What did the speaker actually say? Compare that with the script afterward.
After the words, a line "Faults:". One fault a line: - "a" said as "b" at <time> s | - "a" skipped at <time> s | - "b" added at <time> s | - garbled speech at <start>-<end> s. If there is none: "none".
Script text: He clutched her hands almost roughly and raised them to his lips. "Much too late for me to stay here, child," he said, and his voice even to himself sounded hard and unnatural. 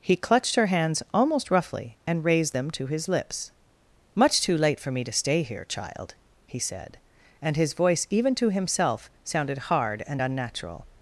He clutched her hands almost roughly and raised them to his lips. "Much too late for me to stay here, child," he said, and his voice even to himself sounded hard and unnatural.
Faults:
none